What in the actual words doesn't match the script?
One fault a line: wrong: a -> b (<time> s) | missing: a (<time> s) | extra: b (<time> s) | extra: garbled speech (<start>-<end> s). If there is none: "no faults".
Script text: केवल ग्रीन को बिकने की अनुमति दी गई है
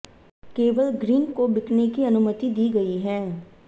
no faults